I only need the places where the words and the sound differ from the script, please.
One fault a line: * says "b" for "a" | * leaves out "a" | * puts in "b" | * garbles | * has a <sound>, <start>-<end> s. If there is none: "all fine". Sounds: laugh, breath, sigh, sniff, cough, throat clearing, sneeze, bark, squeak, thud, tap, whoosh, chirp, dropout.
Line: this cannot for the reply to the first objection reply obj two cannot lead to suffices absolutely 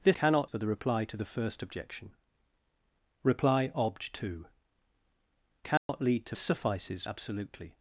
* has a dropout, 5.8-5.9 s